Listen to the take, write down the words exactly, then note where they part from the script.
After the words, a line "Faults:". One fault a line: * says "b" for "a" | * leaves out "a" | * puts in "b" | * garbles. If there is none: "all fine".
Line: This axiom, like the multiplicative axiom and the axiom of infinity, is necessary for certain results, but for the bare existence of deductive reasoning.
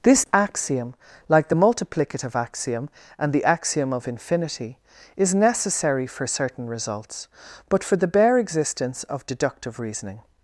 This axiom, like the multiplicative axiom and the axiom of infinity, is necessary for certain results, but for the bare existence of deductive reasoning.
Faults:
all fine